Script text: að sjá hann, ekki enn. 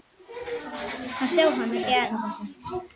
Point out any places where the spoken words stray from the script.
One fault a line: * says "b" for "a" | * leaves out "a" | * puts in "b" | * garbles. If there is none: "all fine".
all fine